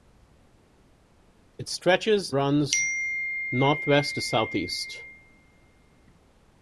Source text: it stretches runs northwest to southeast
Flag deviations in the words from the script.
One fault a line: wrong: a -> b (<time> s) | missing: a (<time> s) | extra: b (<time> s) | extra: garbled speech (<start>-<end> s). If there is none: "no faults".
no faults